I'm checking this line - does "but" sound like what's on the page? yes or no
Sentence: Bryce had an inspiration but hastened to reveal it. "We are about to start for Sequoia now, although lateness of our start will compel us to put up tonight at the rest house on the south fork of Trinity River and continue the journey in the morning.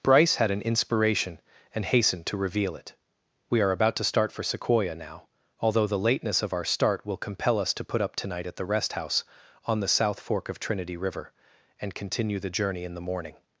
no